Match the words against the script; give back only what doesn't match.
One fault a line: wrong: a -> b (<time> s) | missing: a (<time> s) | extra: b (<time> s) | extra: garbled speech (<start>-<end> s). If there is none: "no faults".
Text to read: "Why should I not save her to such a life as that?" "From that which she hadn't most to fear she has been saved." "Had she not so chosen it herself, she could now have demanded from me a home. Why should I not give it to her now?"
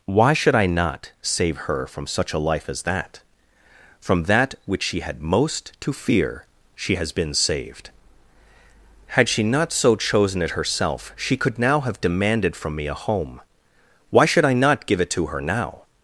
wrong: to -> from (1.9 s)
wrong: hadn't -> had (5.0 s)